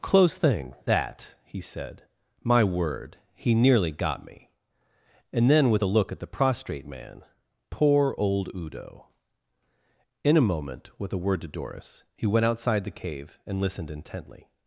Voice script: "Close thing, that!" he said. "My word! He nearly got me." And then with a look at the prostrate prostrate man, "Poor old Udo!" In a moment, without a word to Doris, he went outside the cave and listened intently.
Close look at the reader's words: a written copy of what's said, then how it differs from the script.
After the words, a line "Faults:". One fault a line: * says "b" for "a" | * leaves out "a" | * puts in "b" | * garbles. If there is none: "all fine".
"Close thing, that!" he said. "My word! He nearly got me." And then with a look at the prostrate man, "Poor old Udo!" In a moment, with a word to Doris, he went outside the cave and listened intently.
Faults:
* leaves out "prostrate"
* says "with" for "without"